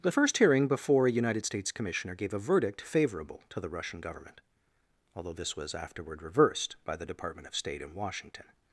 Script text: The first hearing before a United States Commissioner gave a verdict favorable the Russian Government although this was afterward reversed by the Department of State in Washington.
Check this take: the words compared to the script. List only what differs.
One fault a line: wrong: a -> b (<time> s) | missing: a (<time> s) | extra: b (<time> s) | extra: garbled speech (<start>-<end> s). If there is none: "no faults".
extra: to (3.5 s)